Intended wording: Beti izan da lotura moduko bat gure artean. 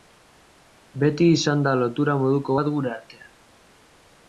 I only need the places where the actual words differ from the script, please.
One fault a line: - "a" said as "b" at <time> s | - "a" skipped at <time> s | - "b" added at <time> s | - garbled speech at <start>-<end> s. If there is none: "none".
none